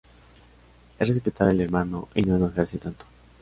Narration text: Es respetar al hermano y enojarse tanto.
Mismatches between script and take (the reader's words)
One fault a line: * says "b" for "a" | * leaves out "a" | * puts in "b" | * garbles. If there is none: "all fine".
* puts in "no"